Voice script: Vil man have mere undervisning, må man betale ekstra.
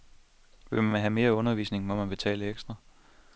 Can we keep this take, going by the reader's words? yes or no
yes